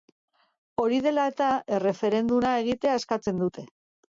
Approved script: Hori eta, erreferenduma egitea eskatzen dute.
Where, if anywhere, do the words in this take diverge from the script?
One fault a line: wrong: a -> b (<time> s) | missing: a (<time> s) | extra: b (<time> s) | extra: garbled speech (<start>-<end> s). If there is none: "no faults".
extra: dela (1.1 s)